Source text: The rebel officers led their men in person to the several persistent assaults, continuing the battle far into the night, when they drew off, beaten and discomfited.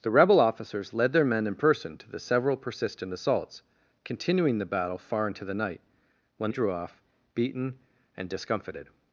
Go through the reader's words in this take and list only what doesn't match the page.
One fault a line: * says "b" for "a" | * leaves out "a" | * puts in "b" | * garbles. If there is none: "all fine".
* leaves out "they"